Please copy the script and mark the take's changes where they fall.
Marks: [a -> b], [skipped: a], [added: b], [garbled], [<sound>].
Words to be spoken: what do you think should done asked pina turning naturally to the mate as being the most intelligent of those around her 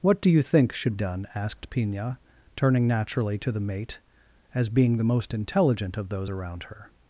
what do you think should done asked pina turning naturally to the mate as being the most intelligent of those around her